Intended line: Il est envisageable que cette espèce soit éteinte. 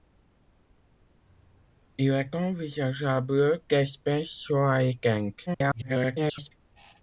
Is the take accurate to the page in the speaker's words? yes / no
no